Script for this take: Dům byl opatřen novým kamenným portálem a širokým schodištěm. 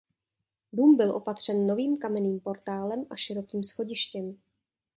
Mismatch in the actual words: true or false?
false